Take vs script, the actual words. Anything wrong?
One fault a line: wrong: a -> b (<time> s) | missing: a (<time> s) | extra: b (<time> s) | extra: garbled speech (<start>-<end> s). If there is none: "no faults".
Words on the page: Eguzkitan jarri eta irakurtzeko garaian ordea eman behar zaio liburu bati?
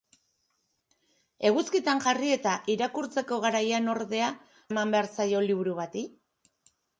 no faults